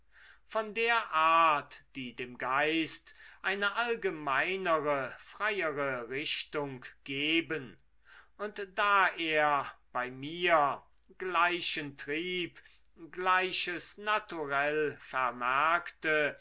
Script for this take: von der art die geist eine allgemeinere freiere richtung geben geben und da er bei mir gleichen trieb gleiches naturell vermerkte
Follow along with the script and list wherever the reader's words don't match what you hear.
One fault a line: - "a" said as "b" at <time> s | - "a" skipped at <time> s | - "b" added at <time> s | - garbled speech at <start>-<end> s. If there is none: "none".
- "dem" added at 2.2 s
- "geben" skipped at 7.8 s